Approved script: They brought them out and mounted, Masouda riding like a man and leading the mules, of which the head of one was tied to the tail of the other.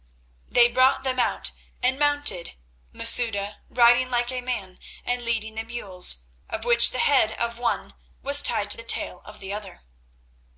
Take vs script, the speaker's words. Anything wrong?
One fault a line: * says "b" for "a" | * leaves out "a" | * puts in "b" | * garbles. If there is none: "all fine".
all fine